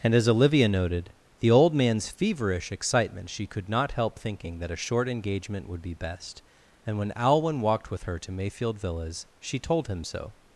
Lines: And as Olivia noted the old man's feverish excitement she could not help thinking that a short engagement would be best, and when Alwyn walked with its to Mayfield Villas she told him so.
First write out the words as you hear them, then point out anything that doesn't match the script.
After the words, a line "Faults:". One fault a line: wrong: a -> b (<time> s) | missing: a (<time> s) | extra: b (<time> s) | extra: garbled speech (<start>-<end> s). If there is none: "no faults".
And as Olivia noted the old man's feverish excitement she could not help thinking that a short engagement would be best, and when Alwyn walked with her to Mayfield Villas she told him so.
Faults:
wrong: its -> her (8.0 s)